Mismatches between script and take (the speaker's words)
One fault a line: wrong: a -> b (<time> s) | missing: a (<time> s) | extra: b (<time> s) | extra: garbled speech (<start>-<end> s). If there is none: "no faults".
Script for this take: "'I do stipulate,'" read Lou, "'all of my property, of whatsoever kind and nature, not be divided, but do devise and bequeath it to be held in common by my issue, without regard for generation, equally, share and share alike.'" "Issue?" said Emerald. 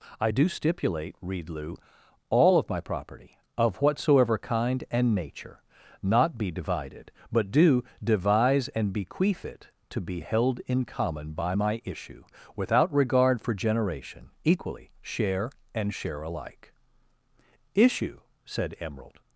no faults